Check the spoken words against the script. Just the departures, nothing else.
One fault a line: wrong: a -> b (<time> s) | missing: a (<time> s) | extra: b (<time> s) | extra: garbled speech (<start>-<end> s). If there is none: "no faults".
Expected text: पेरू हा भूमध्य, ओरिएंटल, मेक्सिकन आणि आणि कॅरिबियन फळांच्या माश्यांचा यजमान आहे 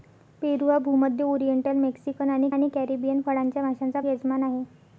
no faults